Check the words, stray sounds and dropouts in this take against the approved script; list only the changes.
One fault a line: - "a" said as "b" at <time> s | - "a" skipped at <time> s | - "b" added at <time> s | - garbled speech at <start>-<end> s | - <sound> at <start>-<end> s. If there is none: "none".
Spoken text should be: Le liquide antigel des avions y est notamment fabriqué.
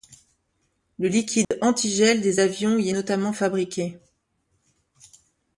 - dropout at 1.4-1.5 s